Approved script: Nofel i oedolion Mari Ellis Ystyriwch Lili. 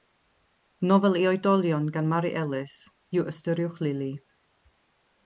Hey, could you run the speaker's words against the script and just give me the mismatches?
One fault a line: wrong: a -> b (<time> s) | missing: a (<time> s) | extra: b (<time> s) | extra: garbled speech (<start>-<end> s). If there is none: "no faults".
extra: gan (2.0 s)
extra: yw (3.2 s)